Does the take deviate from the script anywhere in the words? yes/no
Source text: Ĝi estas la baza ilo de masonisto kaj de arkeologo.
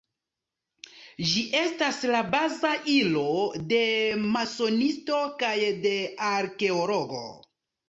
no